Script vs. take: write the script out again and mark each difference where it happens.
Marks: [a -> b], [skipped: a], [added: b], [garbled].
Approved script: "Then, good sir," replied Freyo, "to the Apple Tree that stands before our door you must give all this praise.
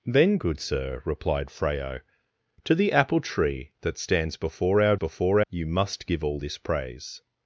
"Then, good sir," replied Freyo, "to the Apple Tree that stands before our [door -> before] you must give all this praise.